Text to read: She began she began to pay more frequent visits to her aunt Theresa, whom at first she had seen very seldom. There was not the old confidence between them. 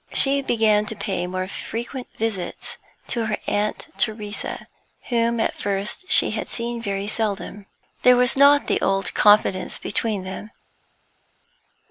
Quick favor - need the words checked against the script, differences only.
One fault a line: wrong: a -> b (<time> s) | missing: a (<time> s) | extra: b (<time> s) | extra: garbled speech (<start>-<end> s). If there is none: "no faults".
missing: she began (0.9 s)